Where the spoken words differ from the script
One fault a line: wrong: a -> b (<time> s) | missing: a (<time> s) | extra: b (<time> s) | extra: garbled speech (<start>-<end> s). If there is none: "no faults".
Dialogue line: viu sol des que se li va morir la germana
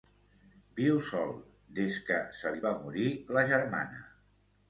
no faults